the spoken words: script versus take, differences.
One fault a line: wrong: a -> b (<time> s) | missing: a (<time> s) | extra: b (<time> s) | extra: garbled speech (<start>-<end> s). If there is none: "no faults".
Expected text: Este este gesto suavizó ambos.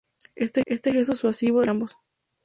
no faults